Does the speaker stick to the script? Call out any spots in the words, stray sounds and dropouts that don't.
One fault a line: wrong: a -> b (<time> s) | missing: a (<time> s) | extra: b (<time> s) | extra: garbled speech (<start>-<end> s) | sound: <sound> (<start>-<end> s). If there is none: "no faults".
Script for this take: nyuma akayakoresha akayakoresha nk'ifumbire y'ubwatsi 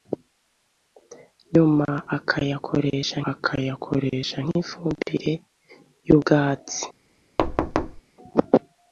sound: thud (7.4-8.0 s)